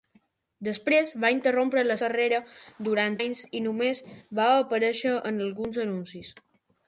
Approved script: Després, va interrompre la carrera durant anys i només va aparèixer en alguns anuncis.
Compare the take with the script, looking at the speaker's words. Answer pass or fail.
pass